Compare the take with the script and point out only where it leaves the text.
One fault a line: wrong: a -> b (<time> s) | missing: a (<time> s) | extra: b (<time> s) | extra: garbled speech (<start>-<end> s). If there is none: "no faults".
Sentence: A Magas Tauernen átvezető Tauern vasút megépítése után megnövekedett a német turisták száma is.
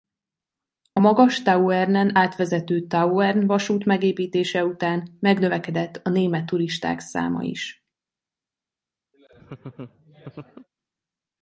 no faults